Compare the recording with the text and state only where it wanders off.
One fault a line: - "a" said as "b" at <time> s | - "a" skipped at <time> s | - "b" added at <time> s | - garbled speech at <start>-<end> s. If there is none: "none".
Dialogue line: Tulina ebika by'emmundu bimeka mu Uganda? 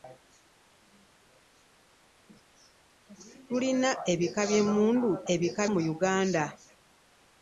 - "bimeka" said as "ebika" at 5.3 s